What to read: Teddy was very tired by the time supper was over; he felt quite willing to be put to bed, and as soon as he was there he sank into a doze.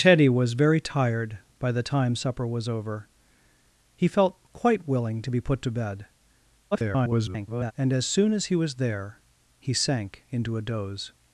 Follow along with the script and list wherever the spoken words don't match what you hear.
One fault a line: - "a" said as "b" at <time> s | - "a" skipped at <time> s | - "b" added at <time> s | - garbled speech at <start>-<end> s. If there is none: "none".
- garbled speech at 6.7-7.7 s